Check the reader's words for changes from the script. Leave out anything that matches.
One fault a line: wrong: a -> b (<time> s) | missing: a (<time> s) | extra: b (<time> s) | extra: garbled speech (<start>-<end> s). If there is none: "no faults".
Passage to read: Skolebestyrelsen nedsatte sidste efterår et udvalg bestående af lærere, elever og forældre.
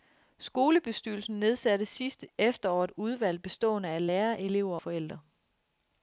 missing: og (4.8 s)